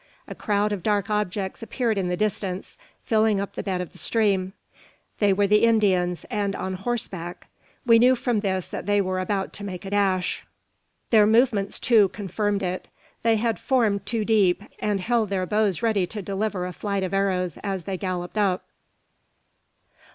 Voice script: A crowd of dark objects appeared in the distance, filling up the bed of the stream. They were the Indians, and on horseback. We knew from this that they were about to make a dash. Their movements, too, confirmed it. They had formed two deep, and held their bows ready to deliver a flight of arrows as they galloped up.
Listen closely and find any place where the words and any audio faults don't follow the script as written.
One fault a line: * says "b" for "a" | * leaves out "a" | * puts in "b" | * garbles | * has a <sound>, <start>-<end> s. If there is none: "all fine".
all fine